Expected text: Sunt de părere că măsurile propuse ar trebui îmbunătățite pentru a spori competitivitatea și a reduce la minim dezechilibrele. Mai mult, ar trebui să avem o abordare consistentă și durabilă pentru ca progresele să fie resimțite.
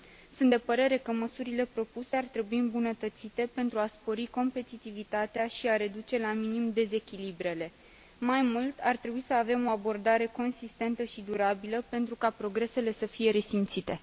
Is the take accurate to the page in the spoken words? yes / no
yes